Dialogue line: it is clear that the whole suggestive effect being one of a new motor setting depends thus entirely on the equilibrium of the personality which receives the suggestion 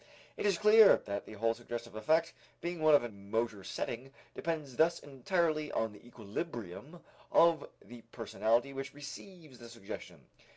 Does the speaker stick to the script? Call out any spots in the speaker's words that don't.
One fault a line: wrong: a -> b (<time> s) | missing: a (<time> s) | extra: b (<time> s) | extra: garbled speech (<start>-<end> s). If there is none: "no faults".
missing: new (3.1 s)